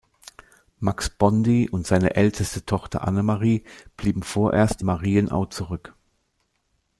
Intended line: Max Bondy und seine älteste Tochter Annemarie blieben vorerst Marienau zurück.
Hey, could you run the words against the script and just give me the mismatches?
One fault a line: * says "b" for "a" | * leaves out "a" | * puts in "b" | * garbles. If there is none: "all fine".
all fine